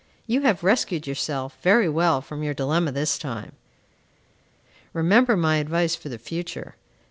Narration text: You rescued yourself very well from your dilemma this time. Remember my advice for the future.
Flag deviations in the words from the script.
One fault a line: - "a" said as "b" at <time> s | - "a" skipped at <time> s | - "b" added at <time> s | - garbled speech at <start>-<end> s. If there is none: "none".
- "have" added at 0.4 s